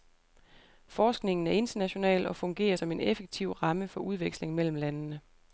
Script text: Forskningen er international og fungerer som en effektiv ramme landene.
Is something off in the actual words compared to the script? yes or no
yes